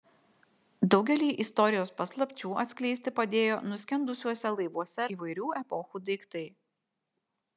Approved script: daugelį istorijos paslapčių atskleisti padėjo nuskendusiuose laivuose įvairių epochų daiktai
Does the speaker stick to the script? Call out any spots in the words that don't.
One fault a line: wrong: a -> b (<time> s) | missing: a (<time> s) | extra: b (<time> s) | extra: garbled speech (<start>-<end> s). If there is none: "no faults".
no faults